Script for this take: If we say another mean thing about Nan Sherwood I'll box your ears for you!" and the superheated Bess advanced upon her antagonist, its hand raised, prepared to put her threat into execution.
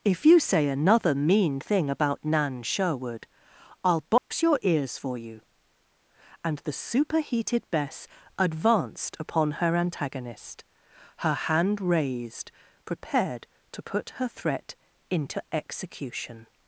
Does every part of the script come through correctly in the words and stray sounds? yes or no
no